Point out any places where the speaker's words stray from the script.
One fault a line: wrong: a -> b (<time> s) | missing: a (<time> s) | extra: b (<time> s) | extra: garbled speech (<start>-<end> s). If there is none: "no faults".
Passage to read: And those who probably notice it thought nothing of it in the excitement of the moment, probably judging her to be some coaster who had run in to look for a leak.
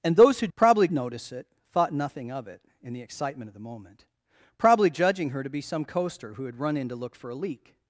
no faults